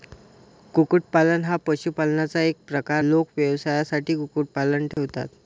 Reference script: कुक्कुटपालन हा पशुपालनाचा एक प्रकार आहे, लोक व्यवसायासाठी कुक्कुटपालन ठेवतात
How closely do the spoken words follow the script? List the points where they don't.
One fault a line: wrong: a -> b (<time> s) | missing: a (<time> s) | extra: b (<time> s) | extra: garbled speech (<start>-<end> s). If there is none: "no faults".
missing: आहे (3.0 s)